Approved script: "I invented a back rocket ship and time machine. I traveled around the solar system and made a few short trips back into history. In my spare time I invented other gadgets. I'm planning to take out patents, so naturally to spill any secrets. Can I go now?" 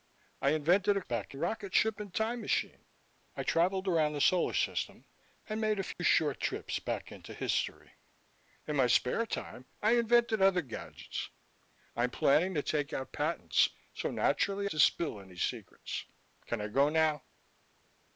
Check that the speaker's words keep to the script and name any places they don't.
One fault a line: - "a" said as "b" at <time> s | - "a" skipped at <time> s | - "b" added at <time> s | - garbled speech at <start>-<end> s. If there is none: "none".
none